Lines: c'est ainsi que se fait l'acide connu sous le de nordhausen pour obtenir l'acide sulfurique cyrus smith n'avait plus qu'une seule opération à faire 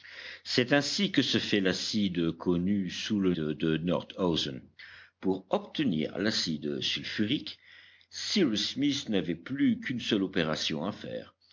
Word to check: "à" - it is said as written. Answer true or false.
true